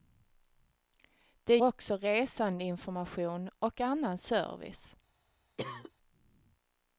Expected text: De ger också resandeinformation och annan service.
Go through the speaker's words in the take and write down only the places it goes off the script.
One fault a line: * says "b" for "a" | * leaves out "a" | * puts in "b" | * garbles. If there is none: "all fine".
* leaves out "ger"